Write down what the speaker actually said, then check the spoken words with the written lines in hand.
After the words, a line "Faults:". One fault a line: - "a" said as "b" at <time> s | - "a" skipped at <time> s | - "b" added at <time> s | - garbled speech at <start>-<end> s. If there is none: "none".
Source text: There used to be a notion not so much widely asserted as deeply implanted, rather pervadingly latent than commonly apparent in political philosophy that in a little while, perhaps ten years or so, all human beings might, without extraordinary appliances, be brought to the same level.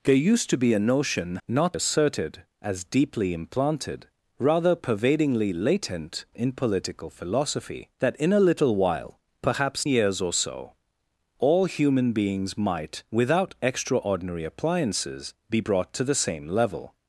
There used to be a notion not asserted as deeply implanted, rather pervadingly latent in political philosophy that in a little while, perhaps years or so, all human beings might, without extraordinary appliances, be brought to the same level.
Faults:
- "so much widely" skipped at 1.8 s
- "than commonly apparent" skipped at 6.2 s
- "ten" skipped at 9.9 s